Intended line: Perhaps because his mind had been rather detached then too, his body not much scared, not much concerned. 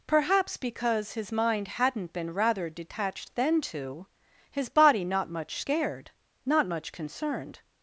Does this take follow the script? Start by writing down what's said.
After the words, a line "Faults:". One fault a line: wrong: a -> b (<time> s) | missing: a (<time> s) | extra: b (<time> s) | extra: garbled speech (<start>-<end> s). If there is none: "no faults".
Perhaps because his mind hadn't been rather detached then too, his body not much scared, not much concerned.
Faults:
wrong: had -> hadn't (1.7 s)